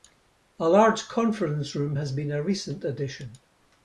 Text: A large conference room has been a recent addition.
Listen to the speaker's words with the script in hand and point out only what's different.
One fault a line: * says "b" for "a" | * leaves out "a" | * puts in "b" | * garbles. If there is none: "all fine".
all fine